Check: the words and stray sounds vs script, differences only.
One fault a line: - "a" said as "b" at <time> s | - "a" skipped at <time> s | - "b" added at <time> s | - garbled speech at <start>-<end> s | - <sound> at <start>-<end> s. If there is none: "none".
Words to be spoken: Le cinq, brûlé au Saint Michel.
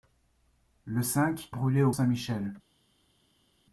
none